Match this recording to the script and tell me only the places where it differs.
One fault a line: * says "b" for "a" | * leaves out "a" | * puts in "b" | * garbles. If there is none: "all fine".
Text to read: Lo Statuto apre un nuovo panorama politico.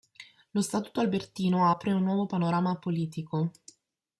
* puts in "albertino"